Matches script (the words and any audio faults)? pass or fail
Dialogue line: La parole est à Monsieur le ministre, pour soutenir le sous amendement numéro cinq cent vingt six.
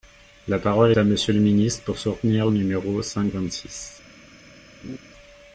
fail